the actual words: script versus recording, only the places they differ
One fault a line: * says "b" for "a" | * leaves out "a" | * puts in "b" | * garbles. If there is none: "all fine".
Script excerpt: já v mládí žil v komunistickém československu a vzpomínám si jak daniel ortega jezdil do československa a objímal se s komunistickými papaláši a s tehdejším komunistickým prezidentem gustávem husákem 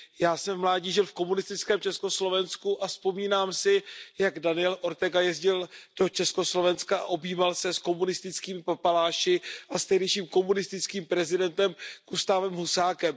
* puts in "jsem"